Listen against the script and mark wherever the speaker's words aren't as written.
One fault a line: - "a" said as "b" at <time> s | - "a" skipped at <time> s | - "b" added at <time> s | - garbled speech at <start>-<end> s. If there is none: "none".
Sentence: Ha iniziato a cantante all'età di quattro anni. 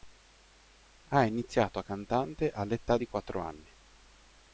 none